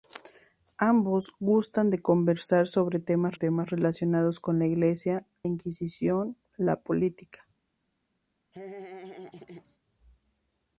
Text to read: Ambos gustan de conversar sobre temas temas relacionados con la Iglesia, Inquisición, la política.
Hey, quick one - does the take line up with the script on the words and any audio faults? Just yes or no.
no